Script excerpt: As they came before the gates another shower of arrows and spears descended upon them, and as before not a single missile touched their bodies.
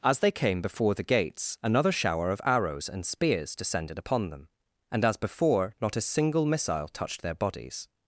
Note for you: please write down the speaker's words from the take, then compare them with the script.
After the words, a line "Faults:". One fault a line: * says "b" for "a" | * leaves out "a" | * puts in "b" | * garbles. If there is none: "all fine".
As they came before the gates another shower of arrows and spears descended upon them, and as before not a single missile touched their bodies.
Faults:
all fine